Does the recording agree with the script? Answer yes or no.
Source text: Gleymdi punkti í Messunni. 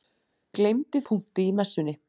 yes